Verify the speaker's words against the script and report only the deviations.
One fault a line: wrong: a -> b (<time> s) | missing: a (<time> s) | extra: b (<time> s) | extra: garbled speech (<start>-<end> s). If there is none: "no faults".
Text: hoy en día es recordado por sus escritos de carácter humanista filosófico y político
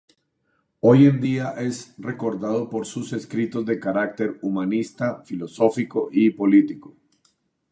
no faults